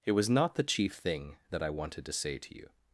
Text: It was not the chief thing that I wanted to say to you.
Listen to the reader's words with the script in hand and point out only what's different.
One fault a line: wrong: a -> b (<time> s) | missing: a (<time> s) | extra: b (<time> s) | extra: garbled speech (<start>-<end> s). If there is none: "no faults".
no faults